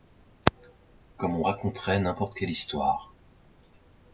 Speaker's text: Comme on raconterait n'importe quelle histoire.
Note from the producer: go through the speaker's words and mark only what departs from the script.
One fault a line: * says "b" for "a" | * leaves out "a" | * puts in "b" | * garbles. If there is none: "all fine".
all fine